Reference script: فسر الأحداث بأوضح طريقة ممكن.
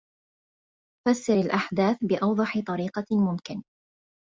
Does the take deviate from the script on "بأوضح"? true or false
false